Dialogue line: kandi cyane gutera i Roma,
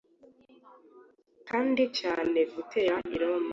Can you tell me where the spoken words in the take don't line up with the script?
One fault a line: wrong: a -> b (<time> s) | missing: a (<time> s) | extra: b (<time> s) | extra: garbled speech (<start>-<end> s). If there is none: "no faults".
no faults